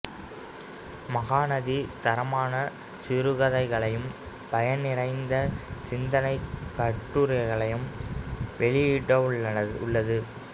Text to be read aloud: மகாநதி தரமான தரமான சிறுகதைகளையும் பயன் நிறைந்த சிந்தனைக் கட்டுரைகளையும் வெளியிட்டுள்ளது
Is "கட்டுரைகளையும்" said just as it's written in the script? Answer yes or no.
yes